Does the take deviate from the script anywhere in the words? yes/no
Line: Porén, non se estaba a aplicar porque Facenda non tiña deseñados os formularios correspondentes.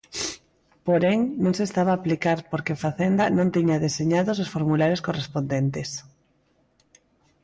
no